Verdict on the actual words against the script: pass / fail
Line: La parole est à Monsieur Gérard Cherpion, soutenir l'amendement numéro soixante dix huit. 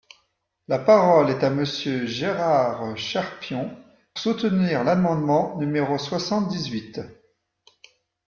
pass